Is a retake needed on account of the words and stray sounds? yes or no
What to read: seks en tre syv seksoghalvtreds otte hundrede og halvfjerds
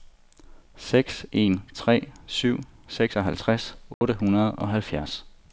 yes